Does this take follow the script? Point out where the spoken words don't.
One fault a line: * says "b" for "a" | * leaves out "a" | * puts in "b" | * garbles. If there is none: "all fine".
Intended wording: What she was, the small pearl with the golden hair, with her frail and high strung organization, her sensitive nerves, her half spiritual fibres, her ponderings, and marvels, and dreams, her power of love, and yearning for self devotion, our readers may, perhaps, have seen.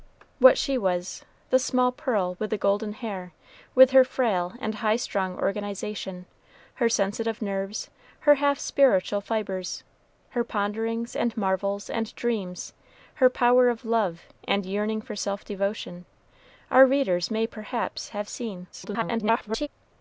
* garbles